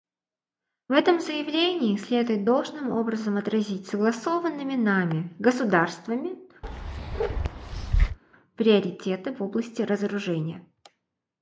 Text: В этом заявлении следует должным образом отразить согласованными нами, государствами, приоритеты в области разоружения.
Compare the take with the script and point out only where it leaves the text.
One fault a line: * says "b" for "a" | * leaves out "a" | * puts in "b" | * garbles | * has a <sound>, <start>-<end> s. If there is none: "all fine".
* has a bark, 6.6-8.2 s